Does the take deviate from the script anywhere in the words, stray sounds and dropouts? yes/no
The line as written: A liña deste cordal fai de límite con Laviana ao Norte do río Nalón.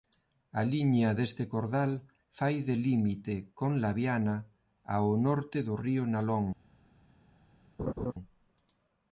yes